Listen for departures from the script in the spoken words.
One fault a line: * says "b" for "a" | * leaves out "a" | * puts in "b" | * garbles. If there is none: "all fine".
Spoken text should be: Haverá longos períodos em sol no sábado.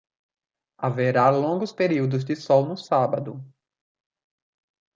* says "de" for "em"